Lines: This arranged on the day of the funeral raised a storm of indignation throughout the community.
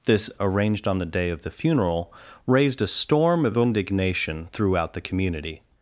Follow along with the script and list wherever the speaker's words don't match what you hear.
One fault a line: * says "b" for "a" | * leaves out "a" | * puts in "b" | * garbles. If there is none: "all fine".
all fine